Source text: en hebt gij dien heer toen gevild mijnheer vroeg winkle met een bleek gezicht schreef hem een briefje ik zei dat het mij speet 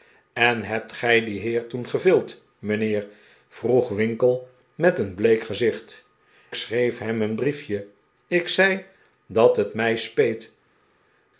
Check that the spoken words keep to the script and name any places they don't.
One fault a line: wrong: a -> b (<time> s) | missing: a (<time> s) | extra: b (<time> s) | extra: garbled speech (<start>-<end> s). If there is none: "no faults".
no faults